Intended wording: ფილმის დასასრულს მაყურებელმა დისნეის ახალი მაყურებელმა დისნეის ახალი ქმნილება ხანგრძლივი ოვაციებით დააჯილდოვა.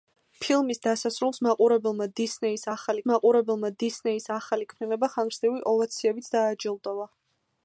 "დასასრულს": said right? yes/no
yes